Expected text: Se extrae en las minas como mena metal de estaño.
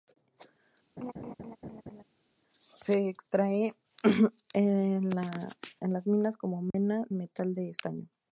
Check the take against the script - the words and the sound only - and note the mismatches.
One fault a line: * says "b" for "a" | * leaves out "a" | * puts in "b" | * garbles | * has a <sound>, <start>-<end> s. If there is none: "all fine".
* has a laugh, 1.0-2.0 s
* has a dropout, 6.7-6.7 s